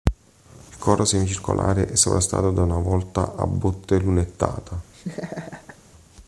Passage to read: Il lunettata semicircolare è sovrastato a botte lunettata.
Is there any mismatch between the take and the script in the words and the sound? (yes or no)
yes